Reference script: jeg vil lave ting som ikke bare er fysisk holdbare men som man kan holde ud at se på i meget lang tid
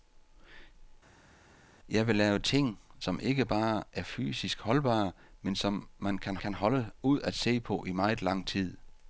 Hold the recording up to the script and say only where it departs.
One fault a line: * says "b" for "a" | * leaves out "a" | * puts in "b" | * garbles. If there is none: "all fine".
* puts in "kan"